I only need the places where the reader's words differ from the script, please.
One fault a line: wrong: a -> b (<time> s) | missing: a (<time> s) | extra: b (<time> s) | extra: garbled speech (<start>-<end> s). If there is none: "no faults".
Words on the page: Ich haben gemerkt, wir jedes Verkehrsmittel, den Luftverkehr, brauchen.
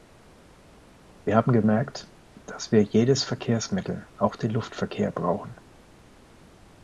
wrong: Ich -> Wir (1.2 s)
extra: dass (2.5 s)
extra: auch (4.2 s)